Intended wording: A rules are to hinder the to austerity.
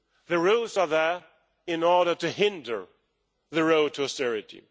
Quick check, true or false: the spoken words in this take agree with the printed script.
false